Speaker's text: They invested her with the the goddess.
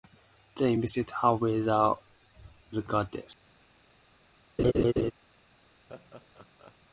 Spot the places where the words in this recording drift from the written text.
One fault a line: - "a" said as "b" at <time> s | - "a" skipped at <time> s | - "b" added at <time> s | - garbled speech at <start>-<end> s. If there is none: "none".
none